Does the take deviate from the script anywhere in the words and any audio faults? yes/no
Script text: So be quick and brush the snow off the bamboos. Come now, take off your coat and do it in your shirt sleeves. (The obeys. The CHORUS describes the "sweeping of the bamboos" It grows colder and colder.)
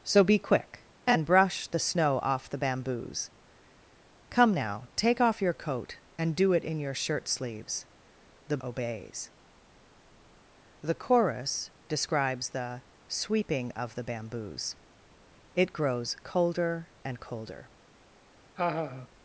yes